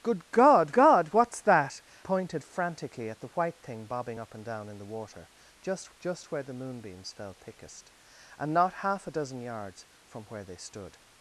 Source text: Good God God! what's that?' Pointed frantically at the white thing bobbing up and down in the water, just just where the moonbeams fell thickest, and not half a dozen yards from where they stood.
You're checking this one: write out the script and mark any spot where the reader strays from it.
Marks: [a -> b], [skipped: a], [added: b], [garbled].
Good God God! what's that?' Pointed frantically at the white thing bobbing up and down in the water, just just where the moonbeams fell thickest, and not half a dozen yards from where they stood.